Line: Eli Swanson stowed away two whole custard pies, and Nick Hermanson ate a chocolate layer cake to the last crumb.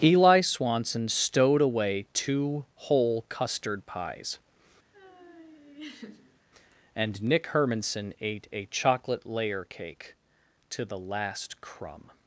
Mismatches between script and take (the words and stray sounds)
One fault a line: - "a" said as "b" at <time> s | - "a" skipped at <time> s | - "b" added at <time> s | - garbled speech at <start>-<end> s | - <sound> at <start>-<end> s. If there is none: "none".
- laugh at 4.9-6.4 s